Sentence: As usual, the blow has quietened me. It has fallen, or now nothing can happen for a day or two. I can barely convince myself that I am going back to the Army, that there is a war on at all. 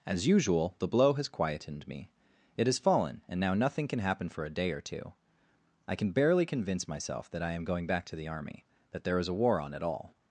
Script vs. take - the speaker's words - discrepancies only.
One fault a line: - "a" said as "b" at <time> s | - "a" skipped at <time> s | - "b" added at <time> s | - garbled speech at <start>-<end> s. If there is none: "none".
- "or" said as "and" at 3.3 s